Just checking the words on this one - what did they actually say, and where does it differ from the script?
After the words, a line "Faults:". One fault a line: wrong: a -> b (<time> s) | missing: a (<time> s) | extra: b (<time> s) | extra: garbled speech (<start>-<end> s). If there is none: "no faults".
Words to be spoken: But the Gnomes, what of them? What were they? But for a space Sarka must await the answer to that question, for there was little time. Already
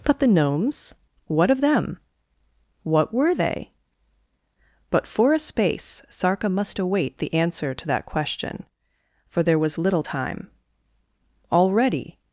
But the Gnomes, what of them? What were they? But for a space Sarka must await the answer to that question, for there was little time. Already
Faults:
no faults